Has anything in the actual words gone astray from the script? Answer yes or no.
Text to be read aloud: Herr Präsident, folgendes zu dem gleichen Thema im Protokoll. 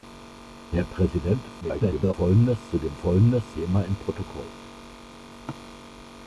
yes